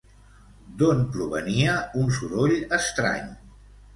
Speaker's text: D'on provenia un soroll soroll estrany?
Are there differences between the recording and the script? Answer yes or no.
yes